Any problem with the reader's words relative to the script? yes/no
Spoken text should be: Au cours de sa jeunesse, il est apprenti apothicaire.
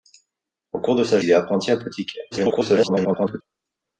yes